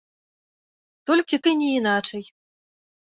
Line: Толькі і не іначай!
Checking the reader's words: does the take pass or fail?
pass